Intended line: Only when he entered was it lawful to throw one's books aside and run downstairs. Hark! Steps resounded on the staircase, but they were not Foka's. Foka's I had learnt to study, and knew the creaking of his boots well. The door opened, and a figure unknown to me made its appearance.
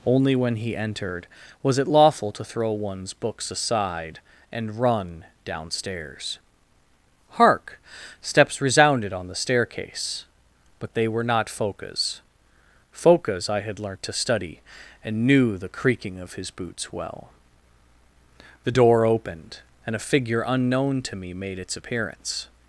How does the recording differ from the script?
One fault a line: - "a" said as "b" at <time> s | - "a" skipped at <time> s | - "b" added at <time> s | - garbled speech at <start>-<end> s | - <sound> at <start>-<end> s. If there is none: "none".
none